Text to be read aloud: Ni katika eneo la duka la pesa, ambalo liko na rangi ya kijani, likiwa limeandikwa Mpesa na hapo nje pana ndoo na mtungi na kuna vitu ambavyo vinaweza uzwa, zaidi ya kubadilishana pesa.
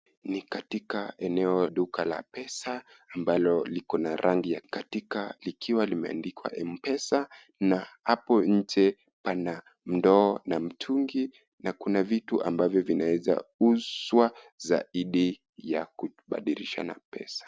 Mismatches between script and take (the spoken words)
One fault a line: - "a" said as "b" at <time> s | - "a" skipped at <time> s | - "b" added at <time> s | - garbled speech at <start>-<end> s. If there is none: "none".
- "la" skipped at 1.7 s
- "kijani" said as "katika" at 4.6 s